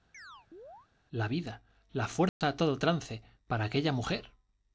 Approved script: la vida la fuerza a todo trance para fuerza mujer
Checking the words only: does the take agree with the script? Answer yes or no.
no